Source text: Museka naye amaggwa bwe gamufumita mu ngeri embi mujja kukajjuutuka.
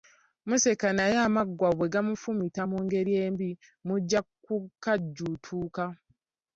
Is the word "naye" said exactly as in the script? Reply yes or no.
yes